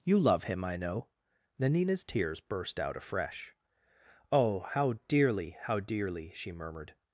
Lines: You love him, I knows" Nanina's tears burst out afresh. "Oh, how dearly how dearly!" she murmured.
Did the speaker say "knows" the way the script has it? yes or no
no